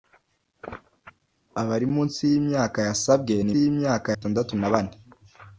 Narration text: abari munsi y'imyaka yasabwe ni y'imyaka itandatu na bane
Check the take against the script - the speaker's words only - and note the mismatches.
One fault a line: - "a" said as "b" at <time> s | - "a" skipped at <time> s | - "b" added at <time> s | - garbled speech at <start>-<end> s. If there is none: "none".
none